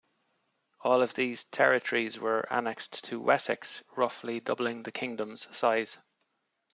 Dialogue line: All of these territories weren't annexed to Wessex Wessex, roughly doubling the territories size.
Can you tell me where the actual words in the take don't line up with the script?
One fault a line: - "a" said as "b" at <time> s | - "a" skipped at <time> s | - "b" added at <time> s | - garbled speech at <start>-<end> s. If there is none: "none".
- "weren't" said as "were" at 2.2 s
- "Wessex" skipped at 3.8 s
- "territories" said as "kingdom's" at 4.9 s